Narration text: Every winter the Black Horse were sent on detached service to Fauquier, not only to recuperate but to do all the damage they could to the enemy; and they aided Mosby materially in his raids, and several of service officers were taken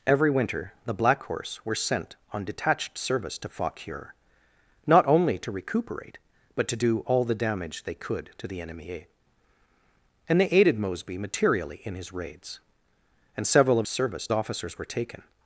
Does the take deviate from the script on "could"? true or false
false